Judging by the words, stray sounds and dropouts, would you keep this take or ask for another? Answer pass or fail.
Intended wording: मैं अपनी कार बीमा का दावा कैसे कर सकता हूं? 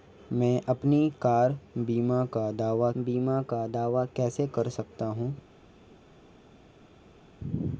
fail